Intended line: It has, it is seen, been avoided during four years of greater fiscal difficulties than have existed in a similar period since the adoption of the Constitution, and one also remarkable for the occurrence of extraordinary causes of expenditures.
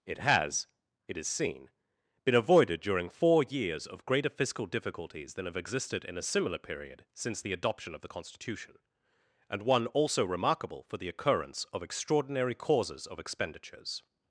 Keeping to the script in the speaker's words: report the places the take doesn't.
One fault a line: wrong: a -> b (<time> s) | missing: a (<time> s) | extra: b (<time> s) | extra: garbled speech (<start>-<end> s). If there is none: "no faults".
no faults